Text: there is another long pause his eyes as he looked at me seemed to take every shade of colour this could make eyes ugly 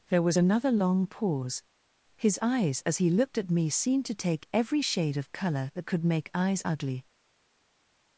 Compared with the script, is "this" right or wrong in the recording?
wrong